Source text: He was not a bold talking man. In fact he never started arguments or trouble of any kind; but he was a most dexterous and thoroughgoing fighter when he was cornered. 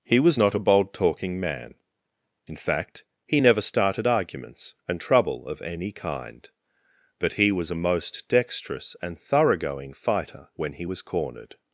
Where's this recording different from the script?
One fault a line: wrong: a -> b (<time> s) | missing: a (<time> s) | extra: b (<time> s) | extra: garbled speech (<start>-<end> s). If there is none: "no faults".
wrong: or -> and (4.9 s)